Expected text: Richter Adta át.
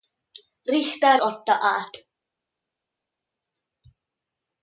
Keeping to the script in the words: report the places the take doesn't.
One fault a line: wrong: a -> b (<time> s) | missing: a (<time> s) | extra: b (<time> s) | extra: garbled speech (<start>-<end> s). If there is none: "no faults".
no faults